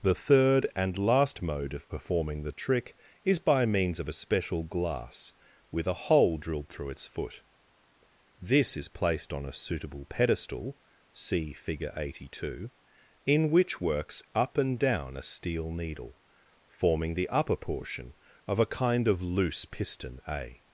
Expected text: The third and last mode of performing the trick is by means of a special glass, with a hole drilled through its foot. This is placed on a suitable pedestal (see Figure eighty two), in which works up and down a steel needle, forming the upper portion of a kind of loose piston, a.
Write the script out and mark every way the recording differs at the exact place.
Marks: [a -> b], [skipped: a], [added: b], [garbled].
The third and last mode of performing the trick is by means of a special glass, with a hole drilled through its foot. This is placed on a suitable pedestal (see Figure eighty two), in which works up and down a steel needle, forming the upper portion of a kind of loose piston, a.